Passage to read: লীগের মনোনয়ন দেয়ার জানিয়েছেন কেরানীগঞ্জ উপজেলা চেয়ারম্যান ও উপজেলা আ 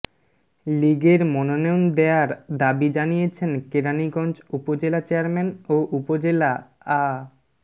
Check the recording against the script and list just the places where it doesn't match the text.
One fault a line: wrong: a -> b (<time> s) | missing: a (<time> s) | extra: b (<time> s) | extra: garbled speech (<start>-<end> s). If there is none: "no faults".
extra: দাবি (2.6 s)